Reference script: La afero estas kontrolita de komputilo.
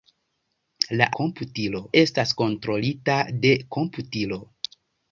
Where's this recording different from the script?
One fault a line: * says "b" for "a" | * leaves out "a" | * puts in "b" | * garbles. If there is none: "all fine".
* says "komputilo" for "afero"